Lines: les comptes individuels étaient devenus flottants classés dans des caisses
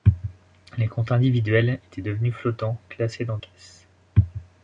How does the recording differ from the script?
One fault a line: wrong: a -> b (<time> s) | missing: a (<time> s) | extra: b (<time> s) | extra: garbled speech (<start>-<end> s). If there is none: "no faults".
missing: des (3.4 s)